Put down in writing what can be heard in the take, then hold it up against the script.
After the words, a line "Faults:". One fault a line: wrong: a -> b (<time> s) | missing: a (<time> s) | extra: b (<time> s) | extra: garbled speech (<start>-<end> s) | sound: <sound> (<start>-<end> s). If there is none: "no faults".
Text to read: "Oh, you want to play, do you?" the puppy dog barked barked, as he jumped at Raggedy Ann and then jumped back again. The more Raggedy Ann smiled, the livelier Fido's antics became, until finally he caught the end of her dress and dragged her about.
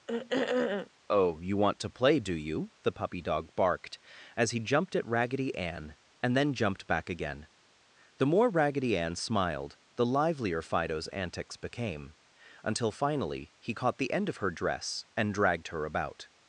"Oh, you want to play, do you?" the puppy dog barked, as he jumped at Raggedy Ann and then jumped back again. The more Raggedy Ann smiled, the livelier Fido's antics became, until finally he caught the end of her dress and dragged her about.
Faults:
sound: throat clearing (0.1-0.9 s)
missing: barked (4.0 s)